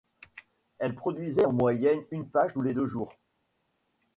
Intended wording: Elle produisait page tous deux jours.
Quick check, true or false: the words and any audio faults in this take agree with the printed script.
false